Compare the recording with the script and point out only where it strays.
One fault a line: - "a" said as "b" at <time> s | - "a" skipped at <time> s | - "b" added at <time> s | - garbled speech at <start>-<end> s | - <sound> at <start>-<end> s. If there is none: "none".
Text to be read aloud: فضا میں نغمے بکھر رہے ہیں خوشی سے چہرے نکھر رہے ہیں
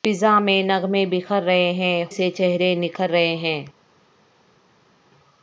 - "خوشی" skipped at 2.0 s